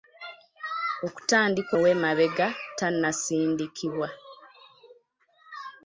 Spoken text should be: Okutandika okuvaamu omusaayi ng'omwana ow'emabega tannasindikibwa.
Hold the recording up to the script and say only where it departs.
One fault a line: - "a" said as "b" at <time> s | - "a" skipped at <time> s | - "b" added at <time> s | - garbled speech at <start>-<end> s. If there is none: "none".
- "okuvaamu omusaayi ng'omwana" skipped at 1.7 s